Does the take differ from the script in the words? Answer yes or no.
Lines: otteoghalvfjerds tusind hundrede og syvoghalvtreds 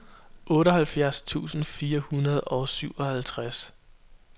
yes